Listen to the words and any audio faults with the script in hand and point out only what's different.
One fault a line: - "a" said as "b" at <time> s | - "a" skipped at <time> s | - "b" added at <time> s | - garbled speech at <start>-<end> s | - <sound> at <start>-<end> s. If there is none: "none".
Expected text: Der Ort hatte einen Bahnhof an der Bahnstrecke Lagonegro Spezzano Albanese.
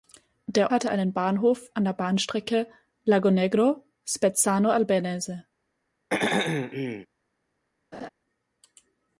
- "Ort" skipped at 0.7 s
- throat clearing at 6.1-7.1 s
- laugh at 7.9-8.1 s